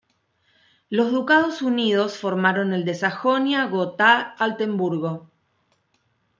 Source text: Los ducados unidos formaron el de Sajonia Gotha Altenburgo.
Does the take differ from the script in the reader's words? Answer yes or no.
no